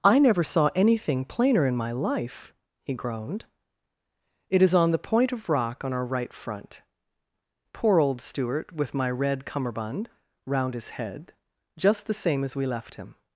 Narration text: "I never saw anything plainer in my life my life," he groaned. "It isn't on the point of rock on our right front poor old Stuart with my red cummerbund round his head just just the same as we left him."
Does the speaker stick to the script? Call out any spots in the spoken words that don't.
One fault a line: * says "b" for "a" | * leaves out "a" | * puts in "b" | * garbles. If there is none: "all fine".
* leaves out "my life"
* says "is" for "isn't"
* leaves out "just"